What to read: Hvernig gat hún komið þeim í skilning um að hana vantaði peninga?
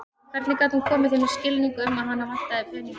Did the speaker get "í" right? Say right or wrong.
right